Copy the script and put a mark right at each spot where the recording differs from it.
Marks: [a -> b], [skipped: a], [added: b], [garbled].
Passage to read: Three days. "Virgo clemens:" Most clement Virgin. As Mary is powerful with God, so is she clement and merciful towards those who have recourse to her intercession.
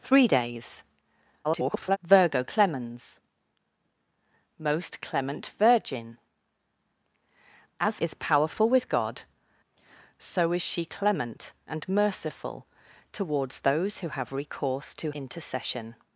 Three days. [garbled] "Virgo clemens:" Most clement Virgin. As [skipped: Mary] is powerful with God, so is she clement and merciful towards those who have recourse to [skipped: her] intercession.